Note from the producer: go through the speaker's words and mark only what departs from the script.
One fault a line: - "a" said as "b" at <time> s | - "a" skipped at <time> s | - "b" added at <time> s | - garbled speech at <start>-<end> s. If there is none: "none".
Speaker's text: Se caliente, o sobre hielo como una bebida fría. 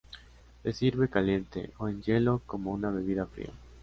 - "sirve" added at 0.7 s
- "sobre" said as "en" at 1.9 s